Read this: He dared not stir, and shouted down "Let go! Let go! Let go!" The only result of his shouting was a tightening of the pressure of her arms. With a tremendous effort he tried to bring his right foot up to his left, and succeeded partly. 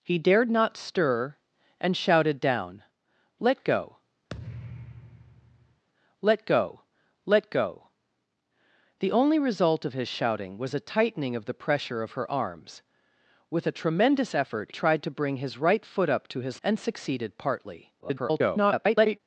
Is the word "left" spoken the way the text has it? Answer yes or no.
no